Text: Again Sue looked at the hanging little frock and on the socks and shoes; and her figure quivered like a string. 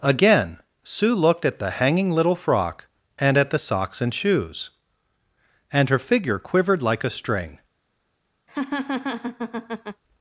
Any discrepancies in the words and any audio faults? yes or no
yes